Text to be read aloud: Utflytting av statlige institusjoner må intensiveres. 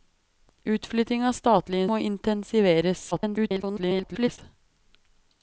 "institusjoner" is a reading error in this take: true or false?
true